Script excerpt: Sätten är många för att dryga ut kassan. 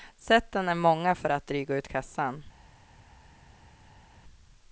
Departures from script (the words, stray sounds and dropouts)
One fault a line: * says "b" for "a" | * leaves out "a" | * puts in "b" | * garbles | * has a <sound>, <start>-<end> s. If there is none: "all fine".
all fine